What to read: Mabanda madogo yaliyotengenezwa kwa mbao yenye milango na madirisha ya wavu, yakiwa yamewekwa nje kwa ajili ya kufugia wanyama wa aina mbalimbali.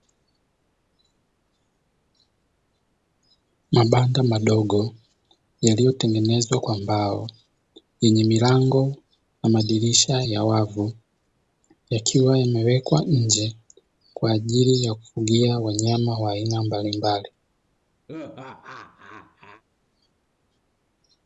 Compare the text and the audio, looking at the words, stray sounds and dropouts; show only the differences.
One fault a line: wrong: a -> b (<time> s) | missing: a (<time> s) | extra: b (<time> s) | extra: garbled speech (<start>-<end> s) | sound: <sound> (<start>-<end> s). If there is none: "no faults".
sound: laugh (18.1-19.6 s)